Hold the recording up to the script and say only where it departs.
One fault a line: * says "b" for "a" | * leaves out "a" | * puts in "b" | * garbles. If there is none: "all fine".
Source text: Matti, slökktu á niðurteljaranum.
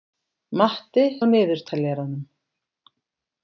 * leaves out "slökktu"